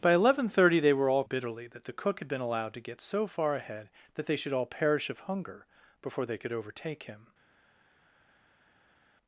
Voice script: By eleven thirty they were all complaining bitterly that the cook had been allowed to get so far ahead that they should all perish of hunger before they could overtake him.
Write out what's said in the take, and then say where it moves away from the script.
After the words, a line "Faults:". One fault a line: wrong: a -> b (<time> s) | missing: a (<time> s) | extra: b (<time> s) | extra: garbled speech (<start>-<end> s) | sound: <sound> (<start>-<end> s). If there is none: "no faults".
By eleven thirty they were all bitterly that the cook had been allowed to get so far ahead that they should all perish of hunger before they could overtake him.
Faults:
missing: complaining (1.2 s)